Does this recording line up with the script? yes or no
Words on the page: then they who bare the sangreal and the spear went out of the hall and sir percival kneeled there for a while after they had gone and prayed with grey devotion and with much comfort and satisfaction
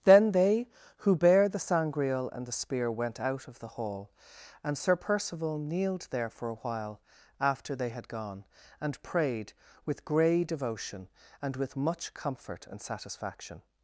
yes